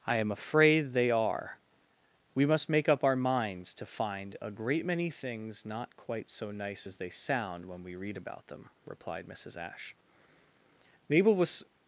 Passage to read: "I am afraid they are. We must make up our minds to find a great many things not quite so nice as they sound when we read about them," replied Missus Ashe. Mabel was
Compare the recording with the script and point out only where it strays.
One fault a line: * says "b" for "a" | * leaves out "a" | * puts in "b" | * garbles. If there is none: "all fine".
all fine